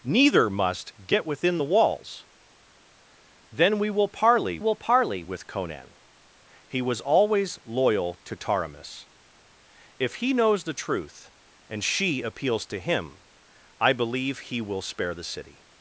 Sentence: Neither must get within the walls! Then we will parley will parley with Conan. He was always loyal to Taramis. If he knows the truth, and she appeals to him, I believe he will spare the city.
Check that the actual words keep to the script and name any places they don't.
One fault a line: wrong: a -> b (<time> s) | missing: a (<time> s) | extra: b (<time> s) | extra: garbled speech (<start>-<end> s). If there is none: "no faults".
no faults